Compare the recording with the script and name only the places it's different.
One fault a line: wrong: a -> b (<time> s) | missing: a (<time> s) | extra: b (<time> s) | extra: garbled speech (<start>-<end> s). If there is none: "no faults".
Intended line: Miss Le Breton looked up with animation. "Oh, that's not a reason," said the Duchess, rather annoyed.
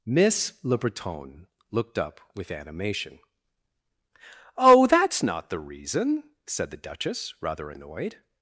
wrong: a -> the (5.5 s)